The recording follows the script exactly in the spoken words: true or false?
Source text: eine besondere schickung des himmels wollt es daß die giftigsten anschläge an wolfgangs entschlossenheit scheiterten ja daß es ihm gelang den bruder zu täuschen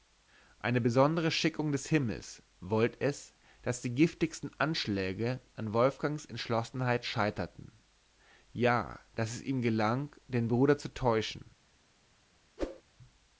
true